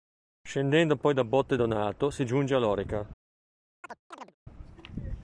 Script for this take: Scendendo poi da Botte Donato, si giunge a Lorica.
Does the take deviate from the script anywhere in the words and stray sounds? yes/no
yes